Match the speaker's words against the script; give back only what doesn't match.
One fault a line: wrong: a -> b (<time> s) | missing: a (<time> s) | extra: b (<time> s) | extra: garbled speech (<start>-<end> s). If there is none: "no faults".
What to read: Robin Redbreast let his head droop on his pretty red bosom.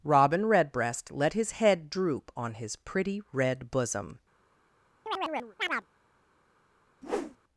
no faults